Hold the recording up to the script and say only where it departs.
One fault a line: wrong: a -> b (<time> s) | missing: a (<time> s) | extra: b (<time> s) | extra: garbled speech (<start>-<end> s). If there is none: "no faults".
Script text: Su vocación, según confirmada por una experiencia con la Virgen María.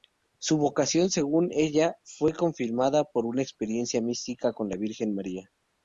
extra: ella fue (1.5 s)
extra: mística (4.0 s)